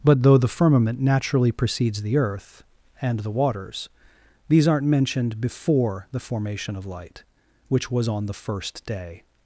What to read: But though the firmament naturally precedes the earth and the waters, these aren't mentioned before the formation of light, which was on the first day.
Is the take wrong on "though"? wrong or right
right